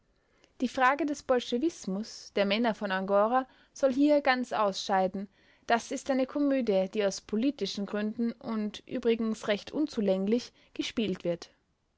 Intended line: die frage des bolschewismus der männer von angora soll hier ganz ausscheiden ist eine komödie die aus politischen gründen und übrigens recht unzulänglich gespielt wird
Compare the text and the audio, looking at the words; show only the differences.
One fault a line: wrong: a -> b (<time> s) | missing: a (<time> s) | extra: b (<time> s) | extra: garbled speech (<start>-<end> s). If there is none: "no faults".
extra: das (5.7 s)